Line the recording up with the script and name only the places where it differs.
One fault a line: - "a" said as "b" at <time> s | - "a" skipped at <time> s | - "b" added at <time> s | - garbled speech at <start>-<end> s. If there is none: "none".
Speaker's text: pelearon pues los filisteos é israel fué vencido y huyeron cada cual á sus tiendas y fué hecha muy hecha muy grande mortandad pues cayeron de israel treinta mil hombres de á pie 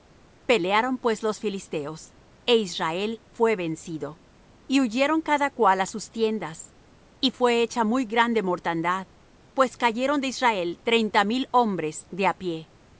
- "hecha muy" skipped at 8.1 s